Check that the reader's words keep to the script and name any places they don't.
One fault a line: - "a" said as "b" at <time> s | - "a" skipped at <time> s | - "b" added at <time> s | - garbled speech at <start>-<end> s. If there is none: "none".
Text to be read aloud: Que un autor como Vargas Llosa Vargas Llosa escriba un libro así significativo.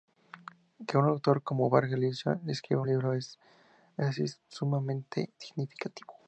- "Vargas Llosa" skipped at 2.4 s
- "es sumamente" added at 4.2 s